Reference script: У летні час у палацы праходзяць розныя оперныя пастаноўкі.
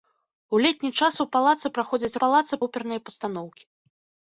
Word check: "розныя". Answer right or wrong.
wrong